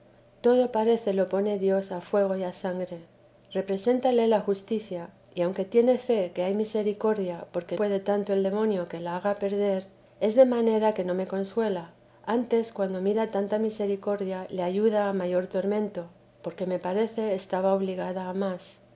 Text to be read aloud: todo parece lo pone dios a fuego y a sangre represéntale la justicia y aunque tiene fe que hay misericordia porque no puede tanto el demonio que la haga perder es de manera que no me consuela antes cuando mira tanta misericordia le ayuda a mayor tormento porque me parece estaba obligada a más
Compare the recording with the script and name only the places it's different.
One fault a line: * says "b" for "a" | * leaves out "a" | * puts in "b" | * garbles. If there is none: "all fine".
* leaves out "no"